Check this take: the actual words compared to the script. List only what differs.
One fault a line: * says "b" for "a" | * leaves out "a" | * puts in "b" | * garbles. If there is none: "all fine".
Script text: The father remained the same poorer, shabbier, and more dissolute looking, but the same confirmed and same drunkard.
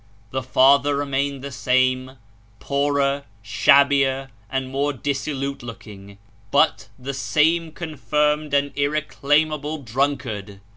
* says "irreclaimable" for "same"